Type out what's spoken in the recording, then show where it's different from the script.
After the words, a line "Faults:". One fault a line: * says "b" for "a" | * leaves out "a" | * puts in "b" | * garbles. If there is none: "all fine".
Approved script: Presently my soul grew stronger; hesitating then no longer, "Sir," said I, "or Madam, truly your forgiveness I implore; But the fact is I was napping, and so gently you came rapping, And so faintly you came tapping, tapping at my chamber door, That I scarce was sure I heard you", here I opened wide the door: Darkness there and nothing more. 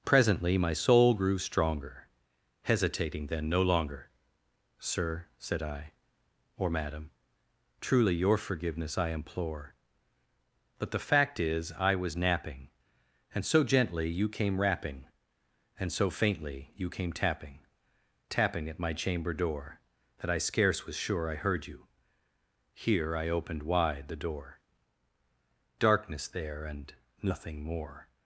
Presently my soul grew stronger; hesitating then no longer, "Sir," said I, "or Madam, truly your forgiveness I implore; But the fact is I was napping, and so gently you came rapping, And so faintly you came tapping, tapping at my chamber door, That I scarce was sure I heard you", here I opened wide the door: Darkness there and nothing more.
Faults:
all fine